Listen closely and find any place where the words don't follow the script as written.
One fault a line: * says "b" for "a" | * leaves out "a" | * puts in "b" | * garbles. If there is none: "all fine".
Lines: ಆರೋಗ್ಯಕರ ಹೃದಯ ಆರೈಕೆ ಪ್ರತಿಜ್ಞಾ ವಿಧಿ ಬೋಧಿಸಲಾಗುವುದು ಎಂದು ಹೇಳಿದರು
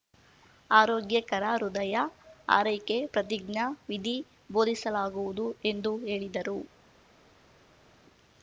all fine